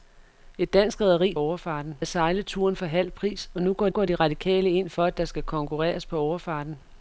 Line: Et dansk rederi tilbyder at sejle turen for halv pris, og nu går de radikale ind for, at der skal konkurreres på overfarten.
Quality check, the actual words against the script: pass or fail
fail